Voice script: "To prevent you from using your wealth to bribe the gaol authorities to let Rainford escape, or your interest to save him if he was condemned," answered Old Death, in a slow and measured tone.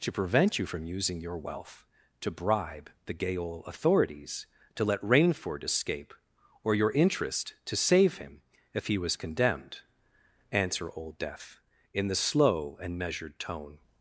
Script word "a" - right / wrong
wrong